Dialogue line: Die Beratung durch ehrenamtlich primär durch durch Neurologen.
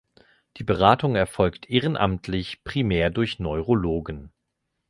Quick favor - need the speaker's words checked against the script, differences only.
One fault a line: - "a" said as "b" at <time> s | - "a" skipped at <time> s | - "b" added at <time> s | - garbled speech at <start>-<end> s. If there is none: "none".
- "durch" said as "erfolgt" at 1.1 s
- "durch" skipped at 3.4 s